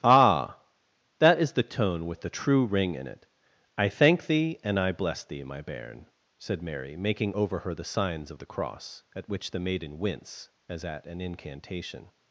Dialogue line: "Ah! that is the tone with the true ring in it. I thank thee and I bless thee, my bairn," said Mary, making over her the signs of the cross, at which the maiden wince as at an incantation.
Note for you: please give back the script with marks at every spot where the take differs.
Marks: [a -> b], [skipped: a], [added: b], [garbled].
"Ah! that is the tone with the true ring in it. I thank thee and I bless thee, my bairn," said Mary, making over her the signs of the cross, at which the maiden wince as at an incantation.